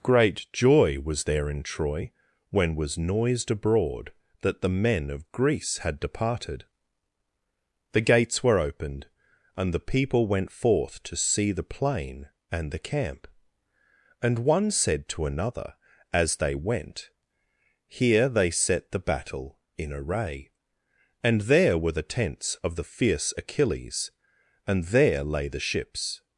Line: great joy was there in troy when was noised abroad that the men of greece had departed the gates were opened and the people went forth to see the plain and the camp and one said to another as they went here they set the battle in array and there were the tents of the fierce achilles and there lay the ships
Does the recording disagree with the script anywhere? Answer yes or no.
no